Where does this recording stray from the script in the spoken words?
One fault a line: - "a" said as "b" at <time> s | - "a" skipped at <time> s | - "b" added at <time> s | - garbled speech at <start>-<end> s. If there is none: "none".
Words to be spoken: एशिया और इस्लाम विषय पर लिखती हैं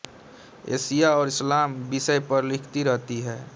- "रहती" added at 2.8 s